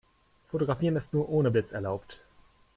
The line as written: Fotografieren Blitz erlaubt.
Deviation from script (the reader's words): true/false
true